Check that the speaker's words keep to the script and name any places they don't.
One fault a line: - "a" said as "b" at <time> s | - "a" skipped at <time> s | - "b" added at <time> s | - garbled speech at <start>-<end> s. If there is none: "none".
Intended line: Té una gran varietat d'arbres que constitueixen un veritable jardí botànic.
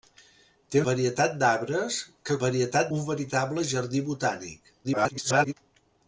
- "una gran" skipped at 0.8 s
- "constitueixen" said as "varietat" at 2.4 s
- garbled speech at 4.8-5.5 s